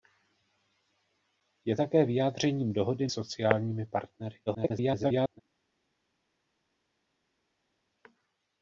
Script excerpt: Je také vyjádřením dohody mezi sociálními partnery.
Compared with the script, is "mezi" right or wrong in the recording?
wrong